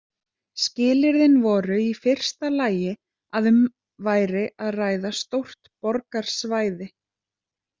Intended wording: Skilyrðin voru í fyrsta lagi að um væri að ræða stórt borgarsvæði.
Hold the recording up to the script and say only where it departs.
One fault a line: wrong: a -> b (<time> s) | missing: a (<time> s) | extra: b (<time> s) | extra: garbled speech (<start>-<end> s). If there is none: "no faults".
no faults